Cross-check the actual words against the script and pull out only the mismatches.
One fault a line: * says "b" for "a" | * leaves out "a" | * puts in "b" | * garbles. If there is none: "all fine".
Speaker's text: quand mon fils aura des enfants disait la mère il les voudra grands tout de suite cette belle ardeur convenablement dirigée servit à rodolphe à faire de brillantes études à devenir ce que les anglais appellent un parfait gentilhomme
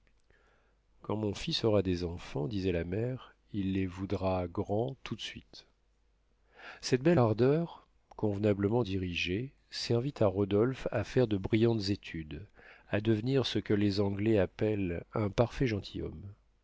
all fine